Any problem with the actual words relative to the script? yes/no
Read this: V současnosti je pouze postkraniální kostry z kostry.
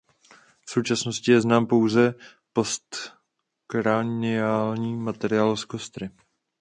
yes